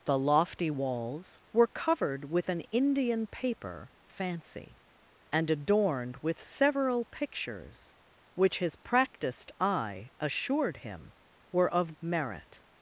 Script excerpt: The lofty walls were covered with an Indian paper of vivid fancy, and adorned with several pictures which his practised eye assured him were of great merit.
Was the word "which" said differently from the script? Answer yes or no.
no